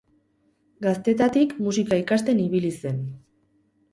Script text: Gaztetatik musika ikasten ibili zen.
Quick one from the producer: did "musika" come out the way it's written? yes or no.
yes